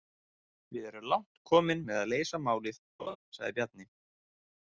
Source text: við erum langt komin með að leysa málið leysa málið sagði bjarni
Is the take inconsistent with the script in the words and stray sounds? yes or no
yes